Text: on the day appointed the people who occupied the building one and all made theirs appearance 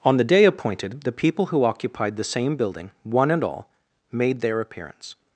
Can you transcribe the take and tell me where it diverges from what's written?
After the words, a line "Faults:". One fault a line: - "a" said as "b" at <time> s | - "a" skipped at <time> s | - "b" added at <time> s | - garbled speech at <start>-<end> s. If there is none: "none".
on the day appointed the people who occupied the same building one and all made their appearance
Faults:
- "same" added at 2.2 s
- "theirs" said as "their" at 4.4 s